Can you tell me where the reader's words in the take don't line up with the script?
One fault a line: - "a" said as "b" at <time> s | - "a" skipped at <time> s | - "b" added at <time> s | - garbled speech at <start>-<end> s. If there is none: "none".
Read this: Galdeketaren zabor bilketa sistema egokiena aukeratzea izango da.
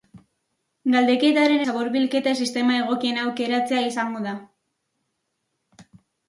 none